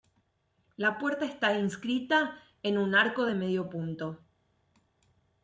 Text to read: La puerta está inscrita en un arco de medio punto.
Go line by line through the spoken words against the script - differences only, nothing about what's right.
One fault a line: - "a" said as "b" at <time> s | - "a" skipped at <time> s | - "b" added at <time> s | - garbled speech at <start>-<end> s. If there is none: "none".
none